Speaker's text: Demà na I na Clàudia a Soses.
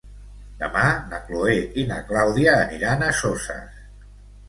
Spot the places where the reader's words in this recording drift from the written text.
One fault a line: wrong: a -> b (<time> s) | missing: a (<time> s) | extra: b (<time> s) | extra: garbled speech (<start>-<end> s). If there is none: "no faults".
extra: Chloé (1.3 s)
extra: aniran (2.6 s)